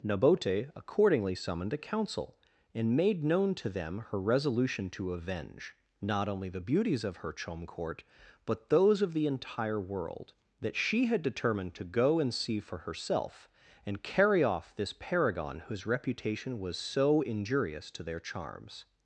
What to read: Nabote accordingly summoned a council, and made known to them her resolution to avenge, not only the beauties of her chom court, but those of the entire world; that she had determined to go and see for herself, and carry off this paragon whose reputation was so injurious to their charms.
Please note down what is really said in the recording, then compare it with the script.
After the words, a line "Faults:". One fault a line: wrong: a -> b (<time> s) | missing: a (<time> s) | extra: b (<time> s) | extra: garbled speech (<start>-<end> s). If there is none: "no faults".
Nabote accordingly summoned a council, and made known to them her resolution to avenge, not only the beauties of her chom court, but those of the entire world; that she had determined to go and see for herself, and carry off this paragon whose reputation was so injurious to their charms.
Faults:
no faults